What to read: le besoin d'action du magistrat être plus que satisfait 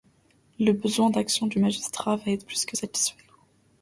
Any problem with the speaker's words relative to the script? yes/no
yes